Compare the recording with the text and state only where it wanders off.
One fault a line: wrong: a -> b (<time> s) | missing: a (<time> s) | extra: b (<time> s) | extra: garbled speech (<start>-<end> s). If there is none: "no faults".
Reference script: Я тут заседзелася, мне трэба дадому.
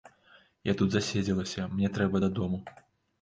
no faults